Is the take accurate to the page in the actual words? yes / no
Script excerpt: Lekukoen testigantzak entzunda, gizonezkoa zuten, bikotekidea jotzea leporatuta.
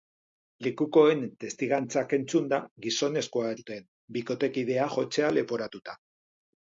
yes